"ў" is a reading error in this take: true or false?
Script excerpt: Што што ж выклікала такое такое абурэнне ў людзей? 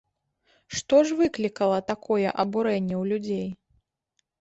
false